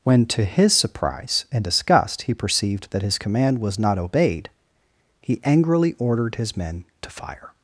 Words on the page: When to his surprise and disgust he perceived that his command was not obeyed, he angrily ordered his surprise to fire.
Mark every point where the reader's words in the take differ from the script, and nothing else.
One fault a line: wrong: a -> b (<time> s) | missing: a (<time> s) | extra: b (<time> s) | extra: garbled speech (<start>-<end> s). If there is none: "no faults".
wrong: surprise -> men (6.6 s)